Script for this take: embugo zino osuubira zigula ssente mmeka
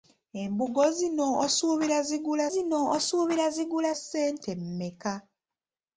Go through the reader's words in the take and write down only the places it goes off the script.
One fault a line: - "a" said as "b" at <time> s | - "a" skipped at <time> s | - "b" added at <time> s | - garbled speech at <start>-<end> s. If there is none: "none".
- "zino osuubira zigula" added at 2.5 s